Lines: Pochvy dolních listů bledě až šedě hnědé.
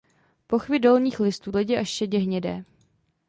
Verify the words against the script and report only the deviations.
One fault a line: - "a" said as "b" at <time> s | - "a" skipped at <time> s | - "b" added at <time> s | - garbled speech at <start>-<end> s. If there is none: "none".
none